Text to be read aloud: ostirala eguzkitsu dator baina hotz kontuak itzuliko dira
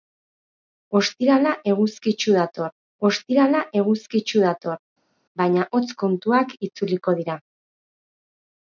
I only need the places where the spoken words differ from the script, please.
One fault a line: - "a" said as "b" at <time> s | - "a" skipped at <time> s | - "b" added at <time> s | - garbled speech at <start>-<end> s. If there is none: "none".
- "ostirala eguzkitsu dator" added at 3.1 s